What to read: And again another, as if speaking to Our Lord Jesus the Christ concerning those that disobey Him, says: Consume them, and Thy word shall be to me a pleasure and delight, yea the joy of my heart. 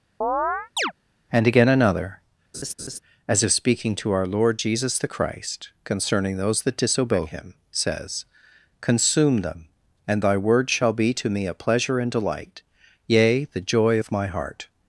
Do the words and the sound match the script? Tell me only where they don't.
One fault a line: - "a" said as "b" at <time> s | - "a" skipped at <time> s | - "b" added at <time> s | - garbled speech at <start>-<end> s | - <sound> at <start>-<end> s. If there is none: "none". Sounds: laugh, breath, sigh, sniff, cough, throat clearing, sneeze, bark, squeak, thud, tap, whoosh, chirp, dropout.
- chirp at 0.2-0.9 s
- laugh at 2.5-3.0 s